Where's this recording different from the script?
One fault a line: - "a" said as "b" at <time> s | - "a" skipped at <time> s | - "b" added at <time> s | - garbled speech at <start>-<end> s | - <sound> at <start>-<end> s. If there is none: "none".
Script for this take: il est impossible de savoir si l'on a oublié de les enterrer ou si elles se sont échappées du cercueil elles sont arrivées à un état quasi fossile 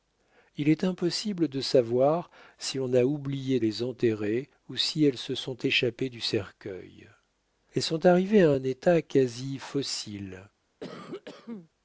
- "de" skipped at 3.6 s
- cough at 10.8-11.7 s